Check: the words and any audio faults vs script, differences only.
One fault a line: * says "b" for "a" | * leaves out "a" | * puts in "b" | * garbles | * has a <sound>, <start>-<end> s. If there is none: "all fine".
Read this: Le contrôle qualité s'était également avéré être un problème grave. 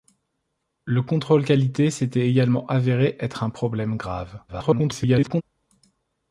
* garbles